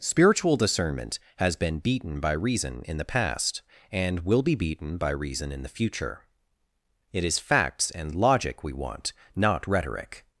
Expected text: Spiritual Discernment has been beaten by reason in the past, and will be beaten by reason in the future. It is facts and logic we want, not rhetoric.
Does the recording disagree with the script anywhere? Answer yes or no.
no